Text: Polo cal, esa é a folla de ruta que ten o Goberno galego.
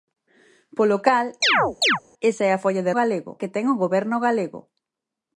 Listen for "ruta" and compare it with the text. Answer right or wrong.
wrong